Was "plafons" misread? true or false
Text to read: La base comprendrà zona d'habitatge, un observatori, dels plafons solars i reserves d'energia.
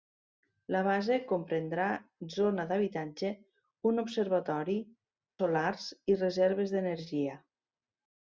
true